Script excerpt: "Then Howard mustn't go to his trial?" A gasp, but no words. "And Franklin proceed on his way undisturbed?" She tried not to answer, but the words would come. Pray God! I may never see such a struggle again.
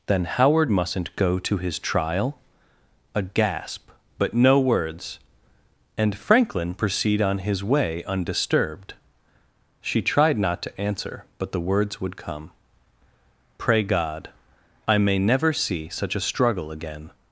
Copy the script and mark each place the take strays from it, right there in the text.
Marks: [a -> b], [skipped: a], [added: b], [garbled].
"Then Howard mustn't go to his trial?" A gasp, but no words. "And Franklin proceed on his way undisturbed?" She tried not to answer, but the words would come. Pray God! I may never see such a struggle again.